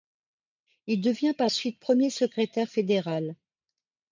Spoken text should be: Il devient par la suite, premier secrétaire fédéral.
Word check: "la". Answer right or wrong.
wrong